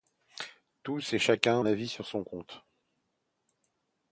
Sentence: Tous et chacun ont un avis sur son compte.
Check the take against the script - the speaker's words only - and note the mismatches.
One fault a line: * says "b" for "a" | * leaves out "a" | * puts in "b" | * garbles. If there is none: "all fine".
* leaves out "ont"